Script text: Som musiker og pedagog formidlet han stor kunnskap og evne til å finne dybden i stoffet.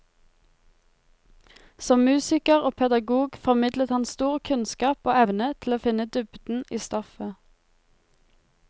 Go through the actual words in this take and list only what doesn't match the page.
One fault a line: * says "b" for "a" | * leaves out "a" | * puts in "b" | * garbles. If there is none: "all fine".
all fine